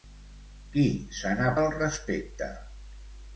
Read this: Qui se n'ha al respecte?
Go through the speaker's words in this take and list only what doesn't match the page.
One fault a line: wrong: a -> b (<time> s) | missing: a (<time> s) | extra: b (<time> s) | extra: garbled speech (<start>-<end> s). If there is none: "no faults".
no faults